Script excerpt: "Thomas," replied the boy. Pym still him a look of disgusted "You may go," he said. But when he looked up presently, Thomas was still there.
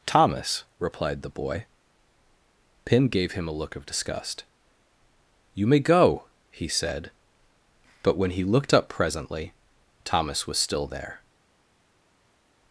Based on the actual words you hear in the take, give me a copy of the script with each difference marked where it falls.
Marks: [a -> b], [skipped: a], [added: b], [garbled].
"Thomas," replied the boy. Pym [still -> gave] him a look of [disgusted -> disgust] "You may go," he said. But when he looked up presently, Thomas was still there.